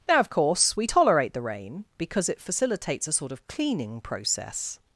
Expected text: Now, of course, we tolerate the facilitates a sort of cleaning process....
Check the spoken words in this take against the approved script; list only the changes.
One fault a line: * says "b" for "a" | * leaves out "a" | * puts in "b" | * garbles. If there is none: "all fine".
* puts in "rain because it"